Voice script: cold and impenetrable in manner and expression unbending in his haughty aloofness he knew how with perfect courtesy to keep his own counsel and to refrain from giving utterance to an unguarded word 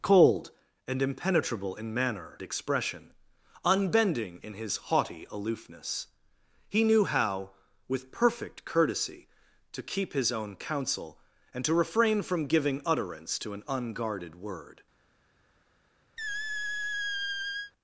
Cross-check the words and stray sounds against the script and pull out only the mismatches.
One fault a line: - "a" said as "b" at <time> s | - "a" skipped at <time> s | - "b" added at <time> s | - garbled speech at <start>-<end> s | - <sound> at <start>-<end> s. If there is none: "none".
- "and" skipped at 2.4 s
- squeak at 16.2-17.7 s